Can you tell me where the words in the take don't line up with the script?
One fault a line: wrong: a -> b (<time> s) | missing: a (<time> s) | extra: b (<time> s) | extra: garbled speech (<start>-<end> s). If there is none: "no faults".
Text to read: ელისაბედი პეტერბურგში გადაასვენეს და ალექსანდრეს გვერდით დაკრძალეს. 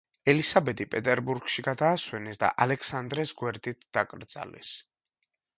no faults